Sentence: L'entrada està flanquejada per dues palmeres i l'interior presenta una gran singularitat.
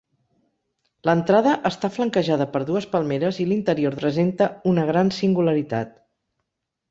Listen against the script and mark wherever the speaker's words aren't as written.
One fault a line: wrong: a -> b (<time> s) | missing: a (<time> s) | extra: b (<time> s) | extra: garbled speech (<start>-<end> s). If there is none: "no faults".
no faults